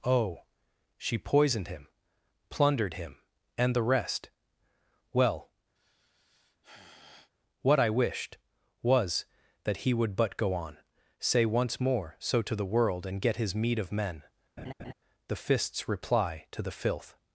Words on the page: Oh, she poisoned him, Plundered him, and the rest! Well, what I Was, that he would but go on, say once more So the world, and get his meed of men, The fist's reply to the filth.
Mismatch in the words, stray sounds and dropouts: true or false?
true